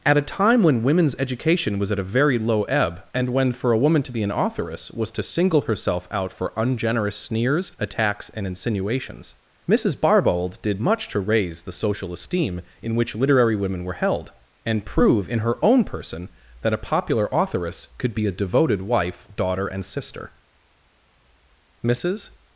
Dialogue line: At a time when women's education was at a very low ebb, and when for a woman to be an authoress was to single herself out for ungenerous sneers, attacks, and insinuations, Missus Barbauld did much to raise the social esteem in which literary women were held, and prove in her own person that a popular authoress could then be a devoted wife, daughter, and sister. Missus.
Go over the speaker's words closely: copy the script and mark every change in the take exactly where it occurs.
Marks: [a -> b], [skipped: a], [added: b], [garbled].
At a time when women's education was at a very low ebb, and when for a woman to be an authoress was to single herself out for ungenerous sneers, attacks, and insinuations, Missus Barbauld did much to raise the social esteem in which literary women were held, and prove in her own person that a popular authoress could [skipped: then] be a devoted wife, daughter, and sister. Missus.